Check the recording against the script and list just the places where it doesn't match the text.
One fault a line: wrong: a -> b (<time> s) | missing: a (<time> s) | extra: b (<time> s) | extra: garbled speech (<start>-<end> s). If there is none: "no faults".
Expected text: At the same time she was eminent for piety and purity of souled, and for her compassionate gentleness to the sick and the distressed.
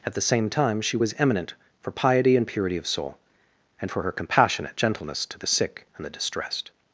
wrong: souled -> soul (2.9 s)